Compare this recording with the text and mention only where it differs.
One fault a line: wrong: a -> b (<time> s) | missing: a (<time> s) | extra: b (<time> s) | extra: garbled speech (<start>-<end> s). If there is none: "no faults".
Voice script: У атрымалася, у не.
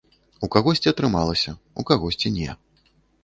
extra: кагосьці (0.5 s)
extra: кагосьці (1.9 s)